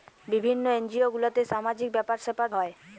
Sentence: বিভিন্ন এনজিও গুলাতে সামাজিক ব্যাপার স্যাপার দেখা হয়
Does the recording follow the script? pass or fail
fail